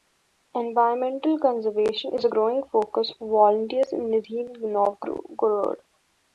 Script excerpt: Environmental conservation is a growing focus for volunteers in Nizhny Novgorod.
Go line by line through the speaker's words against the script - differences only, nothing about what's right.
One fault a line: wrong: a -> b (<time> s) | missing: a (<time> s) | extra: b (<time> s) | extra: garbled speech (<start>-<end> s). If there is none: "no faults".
no faults